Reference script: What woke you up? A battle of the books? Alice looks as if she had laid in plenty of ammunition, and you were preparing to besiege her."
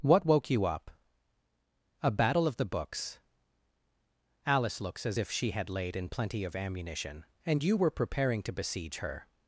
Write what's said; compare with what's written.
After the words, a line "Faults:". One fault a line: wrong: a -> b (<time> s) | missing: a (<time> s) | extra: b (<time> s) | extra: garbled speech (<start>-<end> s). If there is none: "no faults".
What woke you up? A battle of the books? Alice looks as if she had laid in plenty of ammunition, and you were preparing to besiege her."
Faults:
no faults